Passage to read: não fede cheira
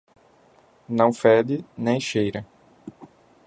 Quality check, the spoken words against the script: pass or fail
fail